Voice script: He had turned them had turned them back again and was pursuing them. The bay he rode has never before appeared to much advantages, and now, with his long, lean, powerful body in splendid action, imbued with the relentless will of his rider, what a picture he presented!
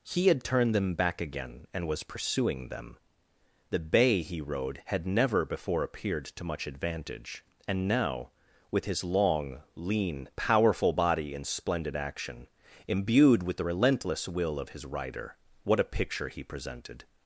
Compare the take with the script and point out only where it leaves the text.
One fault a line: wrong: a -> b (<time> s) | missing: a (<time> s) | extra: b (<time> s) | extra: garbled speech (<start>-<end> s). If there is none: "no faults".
missing: had turned them (0.9 s)
wrong: has -> had (4.8 s)
wrong: advantages -> advantage (6.7 s)